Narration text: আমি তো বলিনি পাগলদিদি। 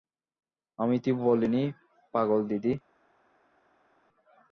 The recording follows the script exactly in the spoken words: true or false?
true